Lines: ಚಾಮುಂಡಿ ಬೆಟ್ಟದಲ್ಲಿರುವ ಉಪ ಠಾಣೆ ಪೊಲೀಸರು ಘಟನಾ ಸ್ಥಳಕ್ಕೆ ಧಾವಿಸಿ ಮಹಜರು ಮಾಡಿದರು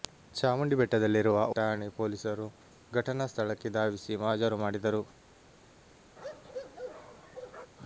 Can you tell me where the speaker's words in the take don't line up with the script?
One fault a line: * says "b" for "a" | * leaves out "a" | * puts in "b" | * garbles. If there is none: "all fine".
* leaves out "ಉಪ"